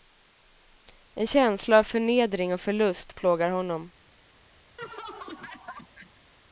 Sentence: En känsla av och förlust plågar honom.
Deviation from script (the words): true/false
true